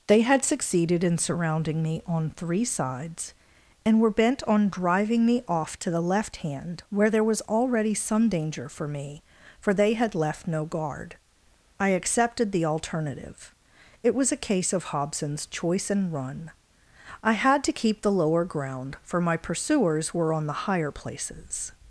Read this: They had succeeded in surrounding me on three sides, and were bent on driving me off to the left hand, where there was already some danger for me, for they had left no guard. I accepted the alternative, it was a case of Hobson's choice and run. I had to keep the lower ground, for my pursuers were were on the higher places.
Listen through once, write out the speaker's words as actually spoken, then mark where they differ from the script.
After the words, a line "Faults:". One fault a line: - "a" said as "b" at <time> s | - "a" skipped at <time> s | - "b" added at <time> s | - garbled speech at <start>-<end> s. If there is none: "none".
They had succeeded in surrounding me on three sides, and were bent on driving me off to the left hand, where there was already some danger for me, for they had left no guard. I accepted the alternative, it was a case of Hobson's choice and run. I had to keep the lower ground, for my pursuers were on the higher places.
Faults:
- "were" skipped at 20.3 s